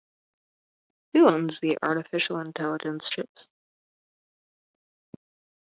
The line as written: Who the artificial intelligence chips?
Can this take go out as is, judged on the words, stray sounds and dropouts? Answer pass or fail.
fail